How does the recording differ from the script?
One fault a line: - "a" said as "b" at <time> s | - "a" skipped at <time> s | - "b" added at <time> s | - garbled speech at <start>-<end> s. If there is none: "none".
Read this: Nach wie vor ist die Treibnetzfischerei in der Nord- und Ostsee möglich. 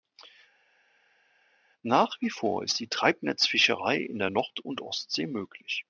none